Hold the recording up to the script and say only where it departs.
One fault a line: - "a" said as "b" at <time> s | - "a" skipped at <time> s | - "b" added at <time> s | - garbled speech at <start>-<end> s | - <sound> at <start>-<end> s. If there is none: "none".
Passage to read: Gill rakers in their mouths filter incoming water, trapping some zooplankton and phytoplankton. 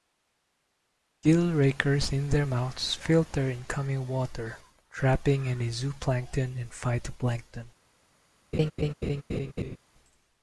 - "some" said as "any" at 5.5 s
- laugh at 8.5-9.8 s